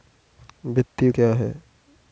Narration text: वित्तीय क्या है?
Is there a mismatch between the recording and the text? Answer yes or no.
no